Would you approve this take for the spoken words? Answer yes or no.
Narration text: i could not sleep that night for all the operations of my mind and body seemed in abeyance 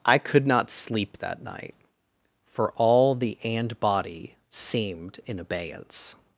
no